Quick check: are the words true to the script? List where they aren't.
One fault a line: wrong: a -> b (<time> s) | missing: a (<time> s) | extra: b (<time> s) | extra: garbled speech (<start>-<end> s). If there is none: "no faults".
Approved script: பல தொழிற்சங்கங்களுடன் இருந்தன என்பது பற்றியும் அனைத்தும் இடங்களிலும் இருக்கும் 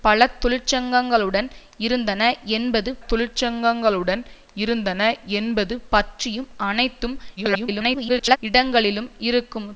extra: தொழிற்சங்கங்களுடன் இருந்தன என்பது (3.1 s)
extra: garbled speech (7.4-8.4 s)